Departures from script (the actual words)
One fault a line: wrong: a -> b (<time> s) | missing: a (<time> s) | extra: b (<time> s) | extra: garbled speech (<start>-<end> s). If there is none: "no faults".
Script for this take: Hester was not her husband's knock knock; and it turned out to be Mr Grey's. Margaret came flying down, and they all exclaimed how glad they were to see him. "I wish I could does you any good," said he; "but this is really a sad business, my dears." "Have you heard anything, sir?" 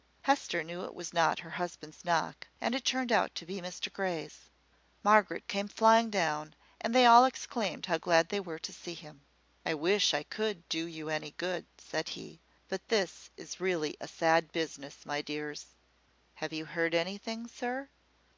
extra: knew it (0.6 s)
missing: knock (2.5 s)
wrong: does -> do (10.7 s)